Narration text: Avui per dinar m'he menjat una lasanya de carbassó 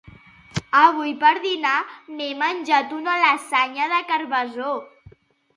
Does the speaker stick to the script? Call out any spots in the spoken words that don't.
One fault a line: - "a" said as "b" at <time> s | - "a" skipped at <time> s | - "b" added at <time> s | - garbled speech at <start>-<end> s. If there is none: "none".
none